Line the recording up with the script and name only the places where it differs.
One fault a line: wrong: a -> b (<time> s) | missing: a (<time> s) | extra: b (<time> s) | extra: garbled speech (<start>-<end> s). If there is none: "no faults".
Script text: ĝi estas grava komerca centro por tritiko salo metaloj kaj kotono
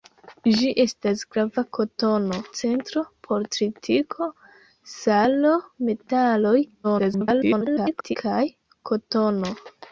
wrong: komerca -> kotono (1.8 s)
extra: garbled speech (6.8-8.2 s)